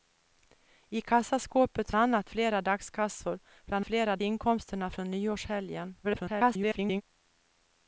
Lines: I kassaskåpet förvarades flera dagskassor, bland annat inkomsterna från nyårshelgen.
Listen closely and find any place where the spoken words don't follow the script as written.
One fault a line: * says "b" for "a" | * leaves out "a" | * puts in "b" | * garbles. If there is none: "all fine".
* says "annat" for "förvarades"
* says "flera" for "annat"
* garbles